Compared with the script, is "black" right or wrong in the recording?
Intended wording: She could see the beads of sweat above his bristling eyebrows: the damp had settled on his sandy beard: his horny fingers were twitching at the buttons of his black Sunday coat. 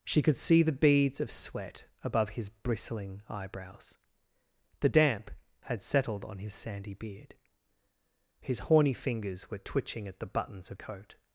wrong